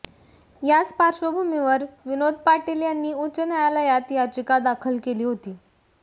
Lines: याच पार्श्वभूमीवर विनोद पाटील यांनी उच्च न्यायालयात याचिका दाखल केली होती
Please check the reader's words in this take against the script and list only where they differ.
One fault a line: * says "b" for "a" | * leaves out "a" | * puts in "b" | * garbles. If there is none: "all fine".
all fine